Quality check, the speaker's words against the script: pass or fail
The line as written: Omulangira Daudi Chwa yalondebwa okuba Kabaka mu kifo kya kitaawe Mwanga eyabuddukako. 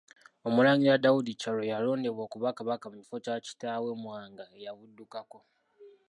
fail